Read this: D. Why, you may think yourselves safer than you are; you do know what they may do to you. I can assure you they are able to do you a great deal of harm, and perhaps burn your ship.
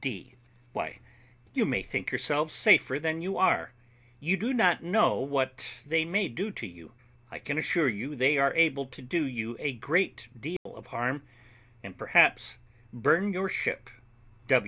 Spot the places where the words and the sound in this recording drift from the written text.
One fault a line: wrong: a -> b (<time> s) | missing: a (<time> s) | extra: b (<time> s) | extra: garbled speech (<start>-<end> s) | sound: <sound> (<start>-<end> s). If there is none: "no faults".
extra: not (4.5 s)
sound: dropout (10.6-10.7 s)